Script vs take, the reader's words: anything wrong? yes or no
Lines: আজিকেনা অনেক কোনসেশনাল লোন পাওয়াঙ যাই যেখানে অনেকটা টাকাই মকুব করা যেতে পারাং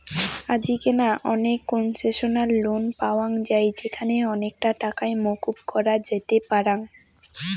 no